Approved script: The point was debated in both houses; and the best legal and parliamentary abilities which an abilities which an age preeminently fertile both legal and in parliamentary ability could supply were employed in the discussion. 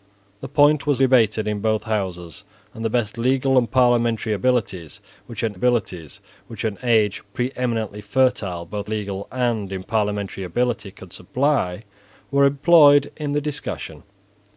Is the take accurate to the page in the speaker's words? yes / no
yes